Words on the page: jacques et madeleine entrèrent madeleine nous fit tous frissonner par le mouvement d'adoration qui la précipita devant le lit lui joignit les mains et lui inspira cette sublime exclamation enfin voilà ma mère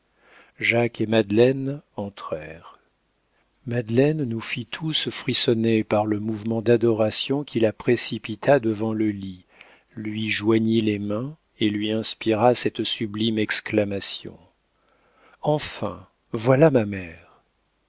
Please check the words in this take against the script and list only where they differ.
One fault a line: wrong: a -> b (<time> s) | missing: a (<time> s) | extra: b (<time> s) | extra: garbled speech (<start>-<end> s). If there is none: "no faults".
no faults